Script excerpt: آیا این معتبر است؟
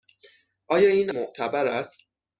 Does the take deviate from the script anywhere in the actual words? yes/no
no